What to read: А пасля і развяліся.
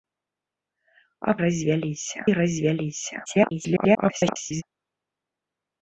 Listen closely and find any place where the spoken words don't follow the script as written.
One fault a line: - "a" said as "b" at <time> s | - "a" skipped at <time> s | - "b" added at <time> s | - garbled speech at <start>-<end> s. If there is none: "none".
- "пасля" said as "развяліся" at 1.4 s
- garbled speech at 3.3-4.6 s